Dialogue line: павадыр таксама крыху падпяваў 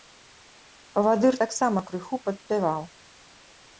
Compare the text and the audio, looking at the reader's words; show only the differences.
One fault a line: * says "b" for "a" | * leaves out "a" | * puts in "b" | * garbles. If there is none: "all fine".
all fine